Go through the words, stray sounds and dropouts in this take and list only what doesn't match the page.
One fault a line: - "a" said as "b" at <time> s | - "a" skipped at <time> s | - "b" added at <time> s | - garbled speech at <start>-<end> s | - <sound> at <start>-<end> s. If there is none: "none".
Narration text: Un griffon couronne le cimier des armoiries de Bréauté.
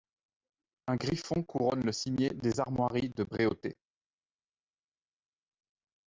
none